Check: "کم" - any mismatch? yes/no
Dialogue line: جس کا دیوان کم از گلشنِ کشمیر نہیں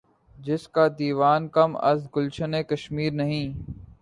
no